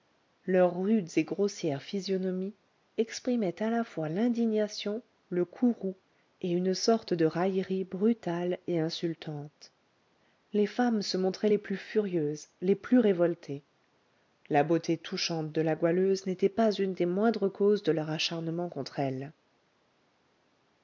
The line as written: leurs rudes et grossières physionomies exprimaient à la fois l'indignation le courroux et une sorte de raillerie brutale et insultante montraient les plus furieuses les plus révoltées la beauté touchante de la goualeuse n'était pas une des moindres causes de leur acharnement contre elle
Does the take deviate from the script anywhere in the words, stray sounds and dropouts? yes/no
yes